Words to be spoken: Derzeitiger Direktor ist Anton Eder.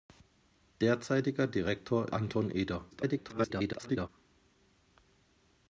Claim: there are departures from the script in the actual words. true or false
true